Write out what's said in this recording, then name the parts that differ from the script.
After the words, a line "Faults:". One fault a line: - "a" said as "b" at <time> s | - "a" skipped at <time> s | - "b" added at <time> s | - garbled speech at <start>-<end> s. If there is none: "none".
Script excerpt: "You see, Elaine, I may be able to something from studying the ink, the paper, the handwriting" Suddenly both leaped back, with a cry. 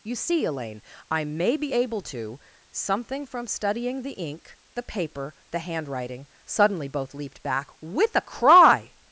"You see, Elaine, I may be able to something from studying the ink, the paper, the handwriting" Suddenly both leaped back, with a cry.
Faults:
none